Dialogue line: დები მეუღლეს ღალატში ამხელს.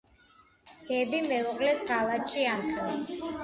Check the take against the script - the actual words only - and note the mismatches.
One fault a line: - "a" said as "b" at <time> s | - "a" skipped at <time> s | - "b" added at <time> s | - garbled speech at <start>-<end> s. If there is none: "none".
none